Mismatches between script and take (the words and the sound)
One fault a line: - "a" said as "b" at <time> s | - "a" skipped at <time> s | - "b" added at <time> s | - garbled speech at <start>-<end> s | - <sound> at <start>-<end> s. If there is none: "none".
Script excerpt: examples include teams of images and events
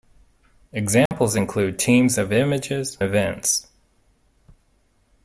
- dropout at 1.1-1.1 s
- "and" skipped at 3.0 s